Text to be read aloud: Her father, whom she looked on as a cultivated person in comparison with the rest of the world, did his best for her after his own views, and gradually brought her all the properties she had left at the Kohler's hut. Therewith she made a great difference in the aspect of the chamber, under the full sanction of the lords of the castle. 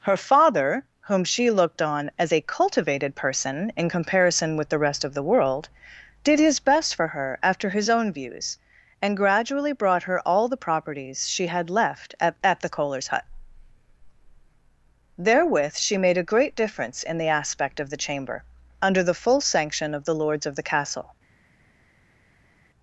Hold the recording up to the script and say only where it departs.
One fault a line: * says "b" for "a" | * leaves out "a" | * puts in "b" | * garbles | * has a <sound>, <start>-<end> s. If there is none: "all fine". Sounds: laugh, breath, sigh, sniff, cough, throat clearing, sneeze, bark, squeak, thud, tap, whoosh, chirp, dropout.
* puts in "at"